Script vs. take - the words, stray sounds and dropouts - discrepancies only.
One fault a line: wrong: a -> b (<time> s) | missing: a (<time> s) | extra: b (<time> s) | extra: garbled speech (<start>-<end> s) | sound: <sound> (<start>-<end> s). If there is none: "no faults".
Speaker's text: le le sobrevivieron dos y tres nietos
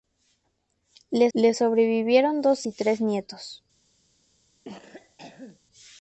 sound: cough (4.6-5.6 s)